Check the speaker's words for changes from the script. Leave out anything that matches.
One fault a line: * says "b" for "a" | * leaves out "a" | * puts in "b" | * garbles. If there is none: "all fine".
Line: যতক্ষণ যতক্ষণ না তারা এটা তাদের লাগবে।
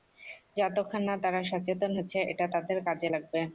* leaves out "যতক্ষণ"
* puts in "সচেতন হচ্ছে"
* puts in "কাজে"